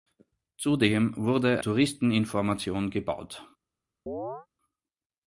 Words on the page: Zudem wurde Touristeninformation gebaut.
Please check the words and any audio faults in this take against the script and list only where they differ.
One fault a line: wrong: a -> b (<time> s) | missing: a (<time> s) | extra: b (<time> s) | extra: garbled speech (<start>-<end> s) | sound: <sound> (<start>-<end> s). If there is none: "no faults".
sound: chirp (4.1-4.5 s)